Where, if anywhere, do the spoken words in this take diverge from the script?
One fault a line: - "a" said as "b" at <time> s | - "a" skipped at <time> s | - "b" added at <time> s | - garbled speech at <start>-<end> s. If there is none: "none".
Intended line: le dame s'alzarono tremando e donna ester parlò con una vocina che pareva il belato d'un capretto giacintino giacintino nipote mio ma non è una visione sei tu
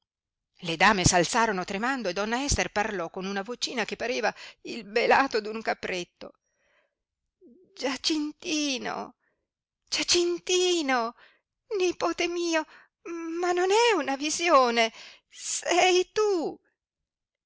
none